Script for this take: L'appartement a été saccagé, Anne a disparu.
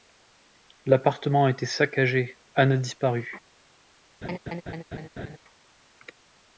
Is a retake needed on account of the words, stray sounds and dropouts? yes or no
yes